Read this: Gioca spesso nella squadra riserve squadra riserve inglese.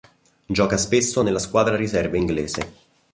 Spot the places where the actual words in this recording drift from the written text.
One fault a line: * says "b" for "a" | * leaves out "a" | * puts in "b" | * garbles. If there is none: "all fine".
* leaves out "squadra riserve"